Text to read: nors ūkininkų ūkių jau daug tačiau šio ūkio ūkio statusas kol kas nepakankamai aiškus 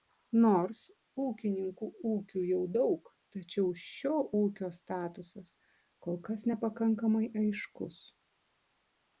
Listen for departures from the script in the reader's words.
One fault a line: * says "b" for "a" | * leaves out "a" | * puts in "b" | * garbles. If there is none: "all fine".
* leaves out "ūkio"